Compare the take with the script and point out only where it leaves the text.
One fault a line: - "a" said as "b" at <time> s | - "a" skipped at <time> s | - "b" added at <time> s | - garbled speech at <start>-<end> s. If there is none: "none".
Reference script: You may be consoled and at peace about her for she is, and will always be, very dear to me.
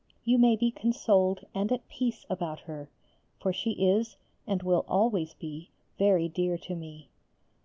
none